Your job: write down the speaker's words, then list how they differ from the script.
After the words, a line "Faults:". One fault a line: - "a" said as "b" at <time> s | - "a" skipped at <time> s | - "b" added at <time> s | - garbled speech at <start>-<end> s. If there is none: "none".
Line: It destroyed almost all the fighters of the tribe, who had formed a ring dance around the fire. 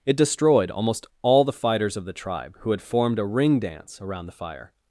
It destroyed almost all the fighters of the tribe, who had formed a ring dance around the fire.
Faults:
none